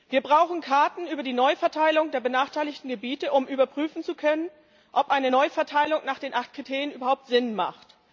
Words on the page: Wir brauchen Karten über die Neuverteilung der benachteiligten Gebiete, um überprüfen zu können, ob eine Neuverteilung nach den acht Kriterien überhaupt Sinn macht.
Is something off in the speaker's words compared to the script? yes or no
no